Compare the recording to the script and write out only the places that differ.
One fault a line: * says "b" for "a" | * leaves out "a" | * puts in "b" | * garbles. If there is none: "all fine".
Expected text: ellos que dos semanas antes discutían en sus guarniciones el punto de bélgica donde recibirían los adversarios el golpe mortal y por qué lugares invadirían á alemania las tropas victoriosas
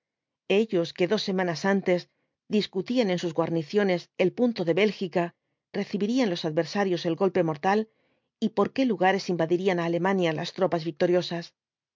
* leaves out "donde"